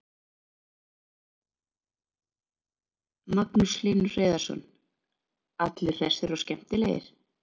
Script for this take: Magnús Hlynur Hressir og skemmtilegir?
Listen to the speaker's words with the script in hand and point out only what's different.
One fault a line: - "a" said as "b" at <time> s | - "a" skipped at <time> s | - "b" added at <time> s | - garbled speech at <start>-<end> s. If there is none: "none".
- "Hreiðarsson Allir" added at 4.1 s